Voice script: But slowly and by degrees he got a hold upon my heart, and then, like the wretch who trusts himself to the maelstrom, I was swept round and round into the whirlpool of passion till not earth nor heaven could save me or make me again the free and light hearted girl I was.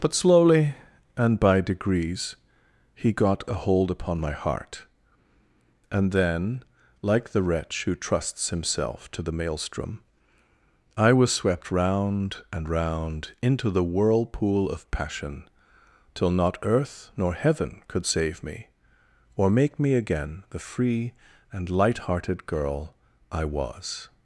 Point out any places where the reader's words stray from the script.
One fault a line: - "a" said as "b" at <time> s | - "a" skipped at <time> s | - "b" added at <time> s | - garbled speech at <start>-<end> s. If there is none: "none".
none